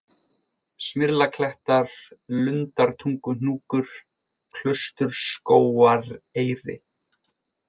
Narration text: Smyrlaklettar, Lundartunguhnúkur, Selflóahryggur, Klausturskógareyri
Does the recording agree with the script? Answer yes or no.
no